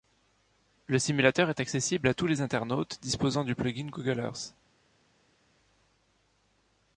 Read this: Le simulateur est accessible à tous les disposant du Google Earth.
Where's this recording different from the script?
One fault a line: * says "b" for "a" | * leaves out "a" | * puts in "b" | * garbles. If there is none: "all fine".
* puts in "internautes"
* puts in "plugin"